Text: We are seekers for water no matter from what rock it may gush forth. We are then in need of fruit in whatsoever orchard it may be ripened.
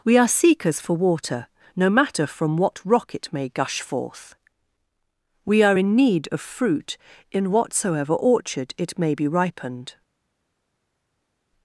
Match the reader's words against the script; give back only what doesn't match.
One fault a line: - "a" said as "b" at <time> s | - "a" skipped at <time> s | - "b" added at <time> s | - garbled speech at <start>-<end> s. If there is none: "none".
- "then" skipped at 5.8 s